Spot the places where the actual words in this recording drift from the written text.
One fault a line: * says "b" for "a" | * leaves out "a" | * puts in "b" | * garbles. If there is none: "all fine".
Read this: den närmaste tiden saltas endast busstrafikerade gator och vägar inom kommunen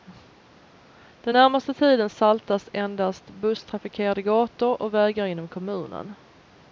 all fine